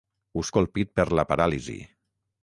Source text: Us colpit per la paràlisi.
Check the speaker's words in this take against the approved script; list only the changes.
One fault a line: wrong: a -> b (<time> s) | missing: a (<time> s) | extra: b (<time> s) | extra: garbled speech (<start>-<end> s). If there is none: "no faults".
no faults